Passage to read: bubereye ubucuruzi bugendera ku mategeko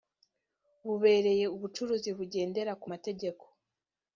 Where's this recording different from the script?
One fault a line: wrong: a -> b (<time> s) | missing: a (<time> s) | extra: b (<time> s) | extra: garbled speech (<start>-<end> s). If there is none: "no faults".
no faults